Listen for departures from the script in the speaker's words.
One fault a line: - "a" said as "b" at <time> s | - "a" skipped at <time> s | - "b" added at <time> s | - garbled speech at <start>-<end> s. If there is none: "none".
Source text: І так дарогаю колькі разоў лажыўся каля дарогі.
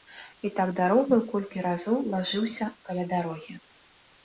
none